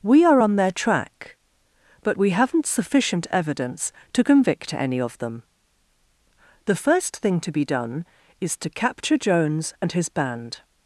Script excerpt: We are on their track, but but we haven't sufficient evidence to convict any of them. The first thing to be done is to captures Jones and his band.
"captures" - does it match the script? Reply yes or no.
no